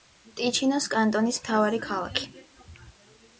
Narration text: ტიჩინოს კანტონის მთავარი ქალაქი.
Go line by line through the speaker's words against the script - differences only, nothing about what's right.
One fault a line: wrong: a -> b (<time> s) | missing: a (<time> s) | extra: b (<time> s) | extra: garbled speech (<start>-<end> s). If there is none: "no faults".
no faults